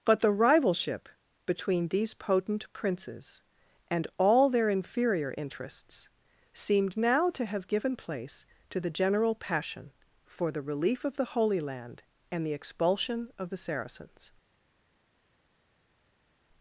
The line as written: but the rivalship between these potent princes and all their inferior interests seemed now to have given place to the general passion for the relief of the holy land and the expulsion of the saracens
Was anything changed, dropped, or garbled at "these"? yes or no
no